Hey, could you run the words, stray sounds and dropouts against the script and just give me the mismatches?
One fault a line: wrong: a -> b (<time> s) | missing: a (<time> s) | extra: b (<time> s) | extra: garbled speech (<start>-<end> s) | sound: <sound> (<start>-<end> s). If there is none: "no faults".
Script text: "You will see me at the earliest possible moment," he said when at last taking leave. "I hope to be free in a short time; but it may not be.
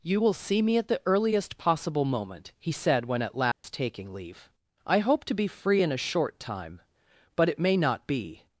sound: dropout (3.5-3.6 s)